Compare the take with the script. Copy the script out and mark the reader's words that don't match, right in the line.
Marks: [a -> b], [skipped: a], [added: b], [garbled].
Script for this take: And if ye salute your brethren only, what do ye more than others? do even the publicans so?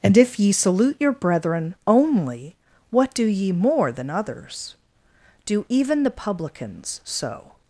And if ye salute your brethren only, what do ye more than others? do even the publicans so?